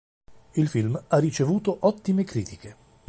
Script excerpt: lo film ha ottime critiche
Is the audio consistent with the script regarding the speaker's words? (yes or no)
no